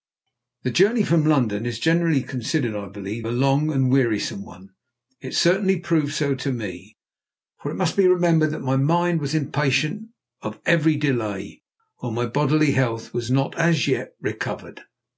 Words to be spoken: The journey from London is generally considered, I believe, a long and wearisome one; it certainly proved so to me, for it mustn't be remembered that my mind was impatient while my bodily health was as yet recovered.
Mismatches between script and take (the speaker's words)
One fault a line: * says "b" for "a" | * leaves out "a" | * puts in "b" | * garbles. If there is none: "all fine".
* says "must" for "mustn't"
* puts in "of every delay"
* puts in "not"